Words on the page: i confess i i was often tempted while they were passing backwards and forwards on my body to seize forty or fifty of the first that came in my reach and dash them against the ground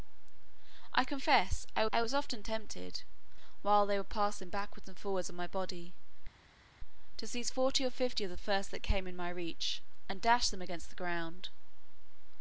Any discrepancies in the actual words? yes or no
no